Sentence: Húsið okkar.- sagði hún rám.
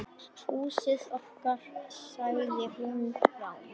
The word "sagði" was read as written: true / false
true